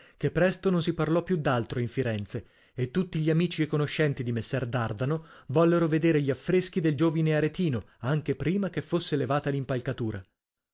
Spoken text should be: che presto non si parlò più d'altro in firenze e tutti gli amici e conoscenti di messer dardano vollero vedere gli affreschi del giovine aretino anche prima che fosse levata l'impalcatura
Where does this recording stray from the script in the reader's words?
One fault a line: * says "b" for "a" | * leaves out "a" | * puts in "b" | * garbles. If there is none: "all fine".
all fine